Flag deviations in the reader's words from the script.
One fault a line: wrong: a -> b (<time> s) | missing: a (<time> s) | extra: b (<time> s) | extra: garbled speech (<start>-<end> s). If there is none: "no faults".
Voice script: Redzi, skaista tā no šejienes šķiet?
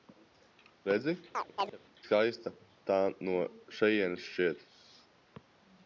no faults